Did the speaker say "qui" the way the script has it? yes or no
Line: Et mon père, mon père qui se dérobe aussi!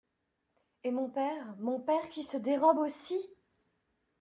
yes